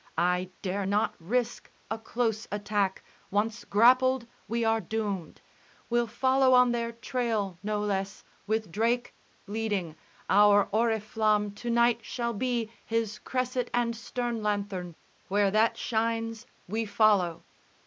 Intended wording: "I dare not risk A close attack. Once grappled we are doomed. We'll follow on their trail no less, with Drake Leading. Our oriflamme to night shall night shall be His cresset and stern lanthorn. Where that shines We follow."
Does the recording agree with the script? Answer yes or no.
no